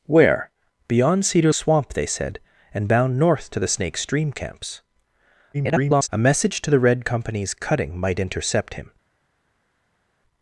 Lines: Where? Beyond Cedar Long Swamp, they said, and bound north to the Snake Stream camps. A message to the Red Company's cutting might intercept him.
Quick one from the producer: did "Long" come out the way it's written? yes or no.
no